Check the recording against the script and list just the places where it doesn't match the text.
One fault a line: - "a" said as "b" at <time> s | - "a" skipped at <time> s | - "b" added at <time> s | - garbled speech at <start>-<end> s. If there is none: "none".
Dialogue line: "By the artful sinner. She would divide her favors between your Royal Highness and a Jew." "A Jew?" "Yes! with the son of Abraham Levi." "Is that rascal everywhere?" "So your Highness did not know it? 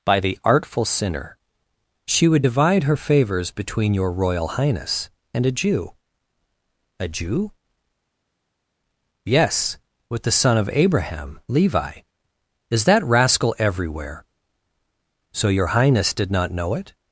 none